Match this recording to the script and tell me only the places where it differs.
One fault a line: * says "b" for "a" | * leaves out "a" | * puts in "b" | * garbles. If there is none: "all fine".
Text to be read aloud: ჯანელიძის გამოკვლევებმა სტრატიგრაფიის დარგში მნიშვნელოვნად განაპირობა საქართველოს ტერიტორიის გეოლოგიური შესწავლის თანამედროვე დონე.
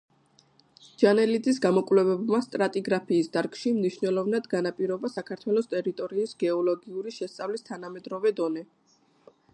all fine